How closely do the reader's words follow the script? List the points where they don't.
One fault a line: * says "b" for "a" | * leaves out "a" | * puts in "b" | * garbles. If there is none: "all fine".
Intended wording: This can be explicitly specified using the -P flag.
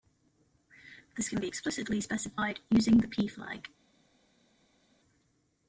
all fine